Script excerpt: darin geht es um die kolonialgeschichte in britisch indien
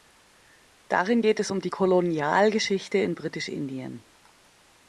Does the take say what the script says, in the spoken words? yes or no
yes